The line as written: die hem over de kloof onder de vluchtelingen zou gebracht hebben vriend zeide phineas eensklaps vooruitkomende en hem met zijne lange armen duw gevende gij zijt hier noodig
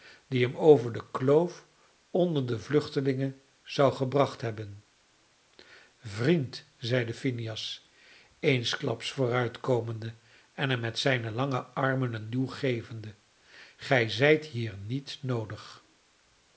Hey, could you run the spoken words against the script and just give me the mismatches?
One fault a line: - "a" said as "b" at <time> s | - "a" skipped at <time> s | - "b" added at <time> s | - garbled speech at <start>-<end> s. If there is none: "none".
- "een" added at 12.1 s
- "niet" added at 14.8 s